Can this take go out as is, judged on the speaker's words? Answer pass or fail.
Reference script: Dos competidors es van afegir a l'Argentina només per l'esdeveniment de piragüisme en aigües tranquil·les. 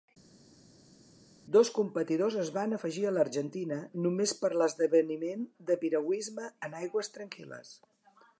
pass